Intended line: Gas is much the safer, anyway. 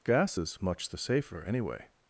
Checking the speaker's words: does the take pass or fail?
pass